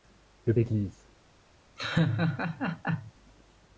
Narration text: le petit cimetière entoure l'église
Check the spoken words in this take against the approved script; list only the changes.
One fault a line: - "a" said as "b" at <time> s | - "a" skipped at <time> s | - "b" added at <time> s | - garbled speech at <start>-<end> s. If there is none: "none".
- "petit cimetière entoure" skipped at 0.6 s